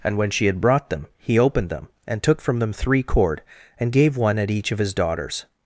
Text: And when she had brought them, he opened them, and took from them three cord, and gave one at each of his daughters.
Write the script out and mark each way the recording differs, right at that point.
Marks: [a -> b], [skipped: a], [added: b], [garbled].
And when she had brought them, he opened them, and took from them three cord, and gave one at each of his daughters.